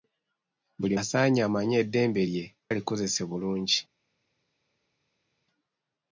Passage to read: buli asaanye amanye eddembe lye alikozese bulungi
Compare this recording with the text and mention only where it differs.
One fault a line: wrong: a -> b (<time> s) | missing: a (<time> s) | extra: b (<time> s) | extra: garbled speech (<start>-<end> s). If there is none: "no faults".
no faults